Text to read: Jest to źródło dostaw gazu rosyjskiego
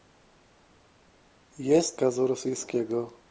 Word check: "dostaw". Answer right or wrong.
wrong